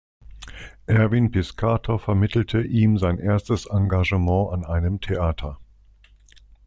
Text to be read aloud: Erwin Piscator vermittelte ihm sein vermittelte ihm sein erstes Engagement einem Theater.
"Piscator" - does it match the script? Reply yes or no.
yes